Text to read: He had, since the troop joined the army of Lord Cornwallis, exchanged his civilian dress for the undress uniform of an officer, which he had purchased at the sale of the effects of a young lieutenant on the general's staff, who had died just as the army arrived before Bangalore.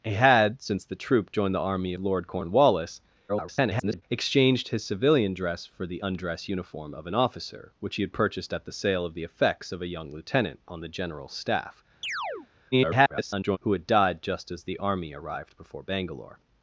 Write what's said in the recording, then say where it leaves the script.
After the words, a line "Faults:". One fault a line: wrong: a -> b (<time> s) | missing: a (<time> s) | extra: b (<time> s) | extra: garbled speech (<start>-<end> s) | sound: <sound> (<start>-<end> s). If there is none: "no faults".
He had, since the troop joined the army Lord Cornwallis, [garbled] exchanged his civilian dress for the undress uniform of an officer, which he had purchased at the sale of the effects of a young lieutenant on the general's staff, [garbled] who had died just as the army arrived before Bangalore.
Faults:
missing: of (1.9 s)
extra: garbled speech (3.3-4.0 s)
sound: chirp (12.0-12.5 s)
extra: garbled speech (12.7-13.6 s)